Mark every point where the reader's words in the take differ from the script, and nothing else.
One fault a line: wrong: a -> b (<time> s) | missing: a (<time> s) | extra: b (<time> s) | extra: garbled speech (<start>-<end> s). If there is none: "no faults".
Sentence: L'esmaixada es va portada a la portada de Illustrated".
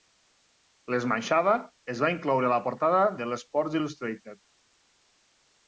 wrong: portada -> incloure (2.1 s)
extra: l'"Sports (3.3 s)